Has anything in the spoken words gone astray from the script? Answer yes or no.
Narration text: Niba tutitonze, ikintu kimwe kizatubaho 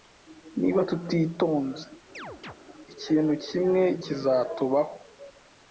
no